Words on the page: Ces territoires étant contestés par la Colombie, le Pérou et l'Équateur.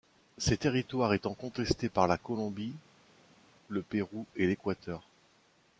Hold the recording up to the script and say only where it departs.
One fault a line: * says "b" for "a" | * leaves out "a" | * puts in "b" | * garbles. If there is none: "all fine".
all fine